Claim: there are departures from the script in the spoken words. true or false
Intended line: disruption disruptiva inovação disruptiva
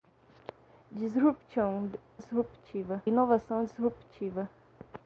false